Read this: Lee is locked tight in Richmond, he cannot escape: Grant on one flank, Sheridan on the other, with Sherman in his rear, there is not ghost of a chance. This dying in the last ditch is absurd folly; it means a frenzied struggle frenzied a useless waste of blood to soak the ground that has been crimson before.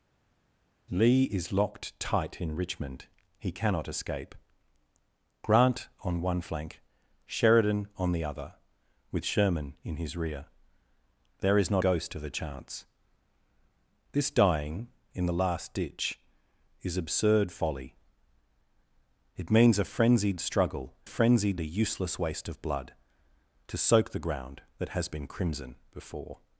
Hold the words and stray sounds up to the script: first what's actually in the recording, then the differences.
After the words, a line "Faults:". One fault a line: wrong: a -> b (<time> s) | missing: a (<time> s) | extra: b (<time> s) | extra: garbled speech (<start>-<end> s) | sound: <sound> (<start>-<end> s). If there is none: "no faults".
Lee is locked tight in Richmond, he cannot escape: Grant on one flank, Sheridan on the other, with Sherman in his rear, there is not ghost of a chance. This dying in the last ditch is absurd folly; it means a frenzied struggle frenzied a useless waste of blood to soak the ground that has been crimson before.
Faults:
no faults